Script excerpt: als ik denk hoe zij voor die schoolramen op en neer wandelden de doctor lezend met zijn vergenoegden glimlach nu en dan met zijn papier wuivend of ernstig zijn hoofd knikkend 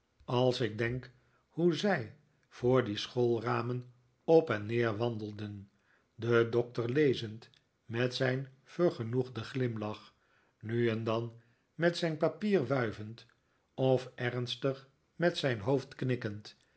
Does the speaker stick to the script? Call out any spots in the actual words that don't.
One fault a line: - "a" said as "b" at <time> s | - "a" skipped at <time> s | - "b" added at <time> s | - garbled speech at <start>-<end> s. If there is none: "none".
- "met" added at 15.2 s